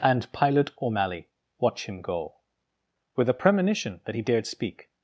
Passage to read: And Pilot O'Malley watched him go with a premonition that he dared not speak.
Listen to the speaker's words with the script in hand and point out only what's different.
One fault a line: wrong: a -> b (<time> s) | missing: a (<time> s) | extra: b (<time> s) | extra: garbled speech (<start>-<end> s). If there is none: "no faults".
wrong: watched -> watch (1.6 s)
missing: not (4.5 s)